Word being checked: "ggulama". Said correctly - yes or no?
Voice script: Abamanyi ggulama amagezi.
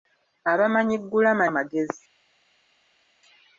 yes